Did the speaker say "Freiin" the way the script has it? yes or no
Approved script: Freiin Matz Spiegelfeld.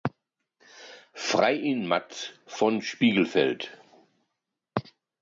yes